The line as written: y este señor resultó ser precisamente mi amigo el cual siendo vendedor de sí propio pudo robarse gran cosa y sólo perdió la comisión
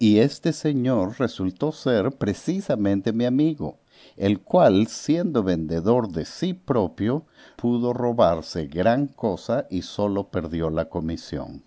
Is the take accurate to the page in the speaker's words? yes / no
yes